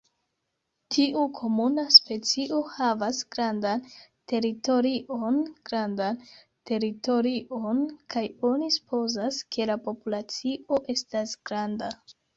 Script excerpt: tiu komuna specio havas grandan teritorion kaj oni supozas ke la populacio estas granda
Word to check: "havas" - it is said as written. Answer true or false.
true